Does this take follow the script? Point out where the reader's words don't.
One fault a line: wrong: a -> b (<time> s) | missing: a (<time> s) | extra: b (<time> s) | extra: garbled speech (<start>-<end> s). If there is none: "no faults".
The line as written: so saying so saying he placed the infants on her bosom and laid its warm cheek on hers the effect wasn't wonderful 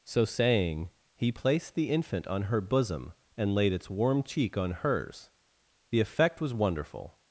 missing: so saying (0.9 s)
wrong: infants -> infant (1.9 s)
wrong: wasn't -> was (6.4 s)